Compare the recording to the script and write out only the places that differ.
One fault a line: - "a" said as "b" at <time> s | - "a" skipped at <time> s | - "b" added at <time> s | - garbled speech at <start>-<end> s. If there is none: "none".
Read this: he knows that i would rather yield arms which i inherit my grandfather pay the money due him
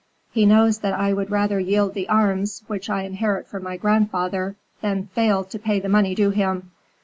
- "the" added at 1.9 s
- "from" added at 3.5 s
- "than fail to" added at 4.8 s